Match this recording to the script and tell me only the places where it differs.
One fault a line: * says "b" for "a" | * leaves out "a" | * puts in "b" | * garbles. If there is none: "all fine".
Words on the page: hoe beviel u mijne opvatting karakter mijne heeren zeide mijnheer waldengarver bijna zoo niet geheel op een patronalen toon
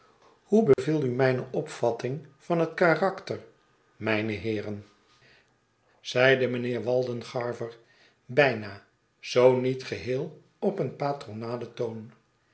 * puts in "van het"